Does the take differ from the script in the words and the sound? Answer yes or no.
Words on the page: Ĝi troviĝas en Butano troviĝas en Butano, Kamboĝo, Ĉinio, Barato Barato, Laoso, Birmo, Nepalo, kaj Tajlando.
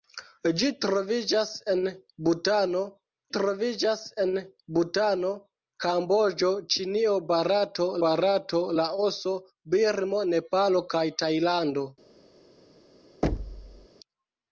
yes